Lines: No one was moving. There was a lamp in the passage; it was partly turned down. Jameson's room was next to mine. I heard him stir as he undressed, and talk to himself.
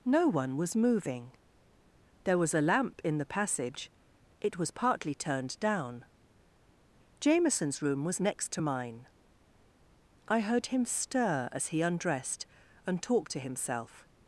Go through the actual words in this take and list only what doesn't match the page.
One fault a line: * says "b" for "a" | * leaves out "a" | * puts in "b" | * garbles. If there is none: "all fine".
all fine